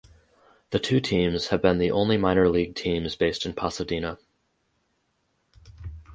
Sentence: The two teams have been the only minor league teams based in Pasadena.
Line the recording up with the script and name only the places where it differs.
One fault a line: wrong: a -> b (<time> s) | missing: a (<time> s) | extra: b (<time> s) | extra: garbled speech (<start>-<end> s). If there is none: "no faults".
no faults